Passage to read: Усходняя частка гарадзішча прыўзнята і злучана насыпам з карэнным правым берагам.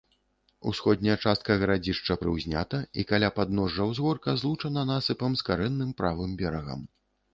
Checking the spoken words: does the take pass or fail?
fail